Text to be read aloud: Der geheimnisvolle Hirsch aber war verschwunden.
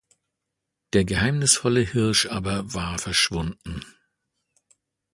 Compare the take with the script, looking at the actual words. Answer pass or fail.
pass